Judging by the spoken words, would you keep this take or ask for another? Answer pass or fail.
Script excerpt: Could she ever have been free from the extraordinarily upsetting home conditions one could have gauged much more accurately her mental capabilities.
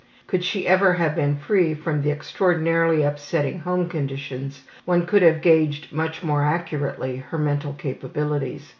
pass